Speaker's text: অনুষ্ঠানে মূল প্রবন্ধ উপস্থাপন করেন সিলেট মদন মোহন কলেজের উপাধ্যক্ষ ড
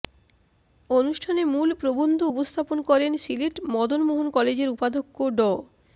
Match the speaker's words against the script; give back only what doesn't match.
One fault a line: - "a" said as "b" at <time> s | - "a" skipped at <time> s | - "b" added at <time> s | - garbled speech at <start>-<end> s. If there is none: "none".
none